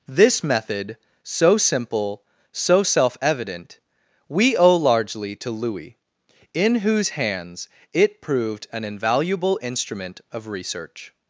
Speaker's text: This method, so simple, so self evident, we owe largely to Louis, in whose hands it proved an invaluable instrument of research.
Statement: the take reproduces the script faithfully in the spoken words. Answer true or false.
true